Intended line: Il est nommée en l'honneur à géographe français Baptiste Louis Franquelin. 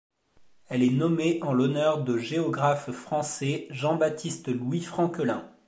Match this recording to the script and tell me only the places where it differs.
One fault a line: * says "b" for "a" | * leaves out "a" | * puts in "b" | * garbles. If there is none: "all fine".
* says "Elle" for "Il"
* says "de" for "à"
* puts in "Jean"